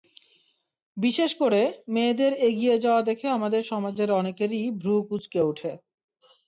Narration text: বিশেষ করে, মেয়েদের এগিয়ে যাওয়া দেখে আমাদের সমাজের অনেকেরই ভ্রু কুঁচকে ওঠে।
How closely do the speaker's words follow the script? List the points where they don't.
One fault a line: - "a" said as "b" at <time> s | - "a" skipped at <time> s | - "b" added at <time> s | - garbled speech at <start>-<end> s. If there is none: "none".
none